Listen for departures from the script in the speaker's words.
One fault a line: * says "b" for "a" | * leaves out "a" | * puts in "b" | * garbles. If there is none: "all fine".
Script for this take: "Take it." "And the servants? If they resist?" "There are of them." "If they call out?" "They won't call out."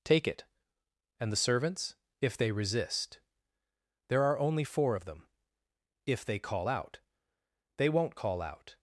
* puts in "only four"